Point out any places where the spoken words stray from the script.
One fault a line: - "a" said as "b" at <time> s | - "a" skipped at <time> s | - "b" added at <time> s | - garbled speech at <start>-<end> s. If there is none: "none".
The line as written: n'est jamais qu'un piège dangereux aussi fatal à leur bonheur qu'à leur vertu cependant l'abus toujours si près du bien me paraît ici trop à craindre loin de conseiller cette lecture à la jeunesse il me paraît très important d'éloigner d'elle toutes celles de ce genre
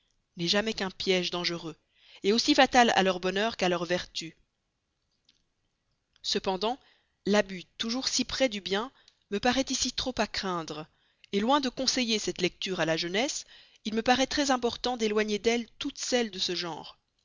none